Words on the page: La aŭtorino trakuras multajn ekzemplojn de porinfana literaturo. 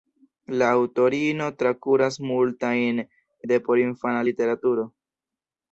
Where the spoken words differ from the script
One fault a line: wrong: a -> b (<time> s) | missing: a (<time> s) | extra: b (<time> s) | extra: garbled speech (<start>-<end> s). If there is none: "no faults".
missing: ekzemplojn (3.0 s)